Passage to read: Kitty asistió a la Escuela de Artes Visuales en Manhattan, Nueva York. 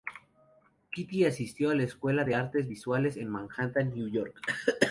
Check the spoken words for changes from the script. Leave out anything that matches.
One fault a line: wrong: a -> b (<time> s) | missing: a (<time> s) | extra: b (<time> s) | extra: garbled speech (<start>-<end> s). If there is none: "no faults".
no faults